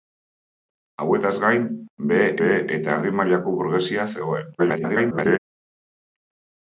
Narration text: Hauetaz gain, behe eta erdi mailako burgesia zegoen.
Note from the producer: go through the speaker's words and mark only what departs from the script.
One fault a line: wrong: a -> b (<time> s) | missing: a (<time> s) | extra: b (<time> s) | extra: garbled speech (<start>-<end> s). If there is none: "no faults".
extra: behe (2.4 s)
extra: garbled speech (4.6-5.4 s)